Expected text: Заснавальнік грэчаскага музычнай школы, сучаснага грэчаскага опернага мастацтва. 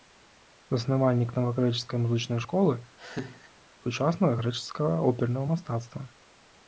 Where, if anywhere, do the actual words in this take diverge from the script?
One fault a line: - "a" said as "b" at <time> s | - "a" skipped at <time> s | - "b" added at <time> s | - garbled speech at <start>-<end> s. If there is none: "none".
- "грэчаскага" said as "навагрэчаскай" at 1.4 s